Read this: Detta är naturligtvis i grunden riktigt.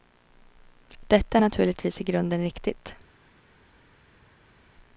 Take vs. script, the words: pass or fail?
pass